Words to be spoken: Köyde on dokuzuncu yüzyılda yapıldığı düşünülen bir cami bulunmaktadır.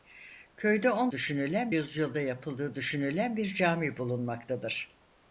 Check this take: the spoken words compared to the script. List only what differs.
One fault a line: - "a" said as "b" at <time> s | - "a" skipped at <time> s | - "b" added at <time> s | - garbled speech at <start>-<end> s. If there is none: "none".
- "dokuzuncu" said as "düşünülen" at 1.1 s